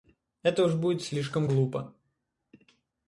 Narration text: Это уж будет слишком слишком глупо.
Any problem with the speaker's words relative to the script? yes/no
yes